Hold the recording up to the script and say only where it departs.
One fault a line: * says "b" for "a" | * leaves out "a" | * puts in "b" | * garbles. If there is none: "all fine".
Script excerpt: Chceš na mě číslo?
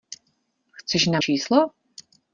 * leaves out "mě"